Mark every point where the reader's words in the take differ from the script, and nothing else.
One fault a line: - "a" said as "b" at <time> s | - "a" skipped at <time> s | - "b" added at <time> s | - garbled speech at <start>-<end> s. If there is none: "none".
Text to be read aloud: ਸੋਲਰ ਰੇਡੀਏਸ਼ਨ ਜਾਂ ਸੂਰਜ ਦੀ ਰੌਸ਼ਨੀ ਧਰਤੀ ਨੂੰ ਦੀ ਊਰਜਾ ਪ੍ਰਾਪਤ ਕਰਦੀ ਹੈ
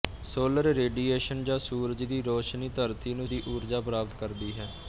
none